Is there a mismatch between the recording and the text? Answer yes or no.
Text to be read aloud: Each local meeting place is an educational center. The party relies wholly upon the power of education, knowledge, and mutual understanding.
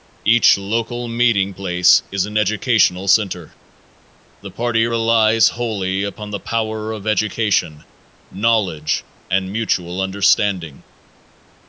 no